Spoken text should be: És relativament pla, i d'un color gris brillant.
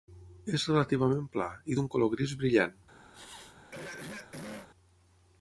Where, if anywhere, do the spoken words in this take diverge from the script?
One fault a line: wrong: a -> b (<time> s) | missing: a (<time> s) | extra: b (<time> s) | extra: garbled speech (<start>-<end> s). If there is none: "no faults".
no faults